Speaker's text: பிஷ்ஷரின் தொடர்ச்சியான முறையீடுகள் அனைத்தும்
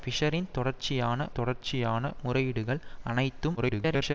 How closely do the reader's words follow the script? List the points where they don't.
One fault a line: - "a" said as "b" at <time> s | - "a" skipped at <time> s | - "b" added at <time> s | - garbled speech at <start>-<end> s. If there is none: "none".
- "தொடர்ச்சியான" added at 1.3 s
- garbled speech at 3.6-4.1 s